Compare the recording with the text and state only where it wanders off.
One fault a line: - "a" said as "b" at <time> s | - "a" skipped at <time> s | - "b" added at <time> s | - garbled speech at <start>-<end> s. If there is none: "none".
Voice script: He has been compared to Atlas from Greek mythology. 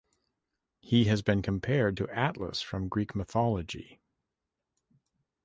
none